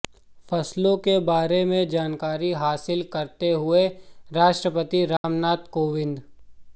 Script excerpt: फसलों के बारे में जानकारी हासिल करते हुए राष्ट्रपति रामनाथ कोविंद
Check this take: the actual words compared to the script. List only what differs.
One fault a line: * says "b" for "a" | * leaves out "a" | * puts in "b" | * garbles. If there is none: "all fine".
all fine